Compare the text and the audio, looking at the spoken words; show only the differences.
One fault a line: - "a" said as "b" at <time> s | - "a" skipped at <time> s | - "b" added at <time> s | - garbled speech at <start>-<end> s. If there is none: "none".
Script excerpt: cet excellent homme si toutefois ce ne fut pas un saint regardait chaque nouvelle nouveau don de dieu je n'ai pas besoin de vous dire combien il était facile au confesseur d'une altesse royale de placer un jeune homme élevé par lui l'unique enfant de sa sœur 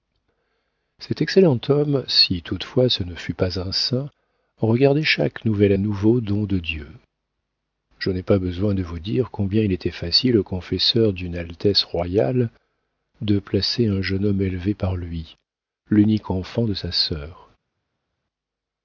none